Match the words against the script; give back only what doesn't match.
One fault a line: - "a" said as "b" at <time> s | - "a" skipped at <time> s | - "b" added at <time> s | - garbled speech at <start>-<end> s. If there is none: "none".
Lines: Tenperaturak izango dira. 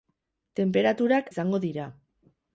none